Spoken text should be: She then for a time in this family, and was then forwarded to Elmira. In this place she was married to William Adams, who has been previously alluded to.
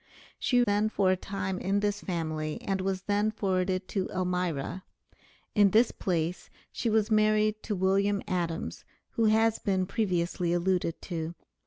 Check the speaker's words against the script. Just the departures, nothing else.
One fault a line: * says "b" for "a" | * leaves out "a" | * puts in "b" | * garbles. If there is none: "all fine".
all fine